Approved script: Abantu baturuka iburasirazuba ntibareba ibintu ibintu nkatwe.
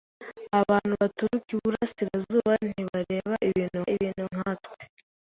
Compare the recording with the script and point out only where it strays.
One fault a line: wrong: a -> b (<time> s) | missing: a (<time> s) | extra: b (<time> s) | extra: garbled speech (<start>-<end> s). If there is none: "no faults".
no faults